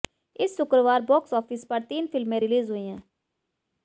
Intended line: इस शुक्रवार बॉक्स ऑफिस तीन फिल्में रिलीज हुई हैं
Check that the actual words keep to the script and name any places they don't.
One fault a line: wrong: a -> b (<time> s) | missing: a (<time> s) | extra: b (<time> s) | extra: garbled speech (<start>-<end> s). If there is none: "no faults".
extra: पर (1.6 s)